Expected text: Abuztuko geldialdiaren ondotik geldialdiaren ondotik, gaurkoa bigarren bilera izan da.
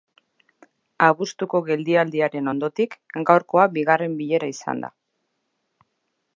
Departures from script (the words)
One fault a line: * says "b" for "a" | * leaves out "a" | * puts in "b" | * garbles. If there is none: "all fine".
* leaves out "geldialdiaren ondotik"